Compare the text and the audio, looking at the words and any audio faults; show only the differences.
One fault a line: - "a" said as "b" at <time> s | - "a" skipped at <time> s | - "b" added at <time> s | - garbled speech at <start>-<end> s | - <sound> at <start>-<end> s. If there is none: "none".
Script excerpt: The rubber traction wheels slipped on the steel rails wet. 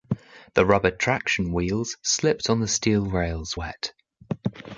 none